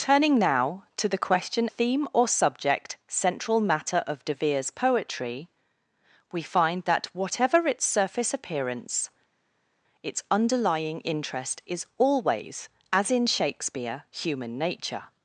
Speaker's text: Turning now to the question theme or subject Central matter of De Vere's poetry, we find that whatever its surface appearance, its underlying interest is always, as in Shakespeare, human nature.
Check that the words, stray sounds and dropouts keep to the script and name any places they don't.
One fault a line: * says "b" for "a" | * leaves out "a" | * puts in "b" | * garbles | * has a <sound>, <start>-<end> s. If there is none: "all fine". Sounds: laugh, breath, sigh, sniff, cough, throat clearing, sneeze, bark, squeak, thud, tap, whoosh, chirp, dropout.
all fine